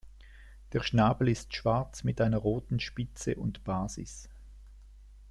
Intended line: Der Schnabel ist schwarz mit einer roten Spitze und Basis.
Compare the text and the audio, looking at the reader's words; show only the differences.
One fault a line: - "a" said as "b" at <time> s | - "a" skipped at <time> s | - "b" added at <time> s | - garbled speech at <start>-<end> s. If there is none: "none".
none